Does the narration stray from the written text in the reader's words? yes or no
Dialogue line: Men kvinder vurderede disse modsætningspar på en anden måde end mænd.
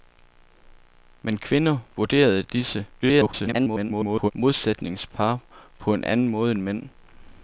yes